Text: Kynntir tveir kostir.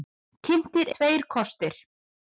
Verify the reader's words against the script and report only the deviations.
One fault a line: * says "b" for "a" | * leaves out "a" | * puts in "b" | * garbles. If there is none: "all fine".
all fine